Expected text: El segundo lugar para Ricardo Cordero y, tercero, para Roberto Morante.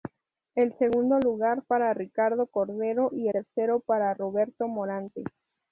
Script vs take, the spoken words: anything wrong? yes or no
no